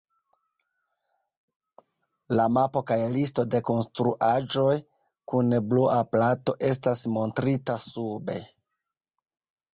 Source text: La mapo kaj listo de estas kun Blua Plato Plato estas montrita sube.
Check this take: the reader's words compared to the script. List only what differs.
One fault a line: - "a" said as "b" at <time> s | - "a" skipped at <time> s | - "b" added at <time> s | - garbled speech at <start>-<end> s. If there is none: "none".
- "estas" said as "konstruaĵoj" at 3.7 s
- "Plato" skipped at 6.6 s